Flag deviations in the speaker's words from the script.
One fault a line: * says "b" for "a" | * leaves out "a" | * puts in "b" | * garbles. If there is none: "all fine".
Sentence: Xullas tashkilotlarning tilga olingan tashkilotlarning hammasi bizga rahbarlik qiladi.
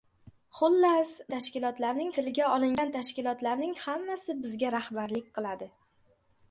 all fine